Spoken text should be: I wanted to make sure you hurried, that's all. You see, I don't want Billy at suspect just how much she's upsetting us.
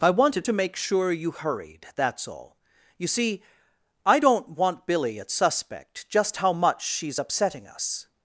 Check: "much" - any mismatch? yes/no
no